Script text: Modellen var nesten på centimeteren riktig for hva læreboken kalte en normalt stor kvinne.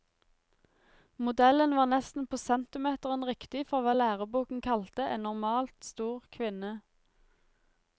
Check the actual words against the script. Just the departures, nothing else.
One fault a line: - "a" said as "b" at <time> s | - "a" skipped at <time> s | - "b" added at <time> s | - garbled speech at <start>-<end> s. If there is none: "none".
none